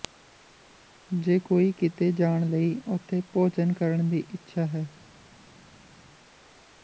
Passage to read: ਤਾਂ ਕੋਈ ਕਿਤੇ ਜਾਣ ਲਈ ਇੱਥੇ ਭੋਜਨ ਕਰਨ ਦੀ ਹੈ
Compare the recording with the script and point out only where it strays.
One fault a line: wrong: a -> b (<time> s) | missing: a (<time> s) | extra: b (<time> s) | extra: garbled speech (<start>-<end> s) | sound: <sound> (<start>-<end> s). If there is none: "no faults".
wrong: ਤਾਂ -> ਜੇ (1.1 s)
wrong: ਇੱਥੇ -> ਉੱਥੇ (2.9 s)
extra: ਇੱਛਾ (4.3 s)